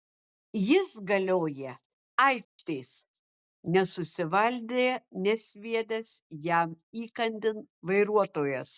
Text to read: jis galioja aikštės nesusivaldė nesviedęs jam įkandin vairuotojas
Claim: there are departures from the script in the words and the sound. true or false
true